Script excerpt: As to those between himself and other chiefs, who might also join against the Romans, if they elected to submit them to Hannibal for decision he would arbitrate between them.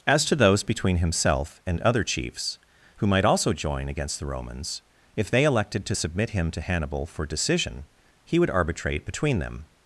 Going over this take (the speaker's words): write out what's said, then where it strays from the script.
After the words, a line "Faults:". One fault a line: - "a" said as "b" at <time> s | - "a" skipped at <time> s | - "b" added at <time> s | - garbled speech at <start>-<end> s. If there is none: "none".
As to those between himself and other chiefs, who might also join against the Romans, if they elected to submit him to Hannibal for decision he would arbitrate between them.
Faults:
- "them" said as "him" at 6.3 s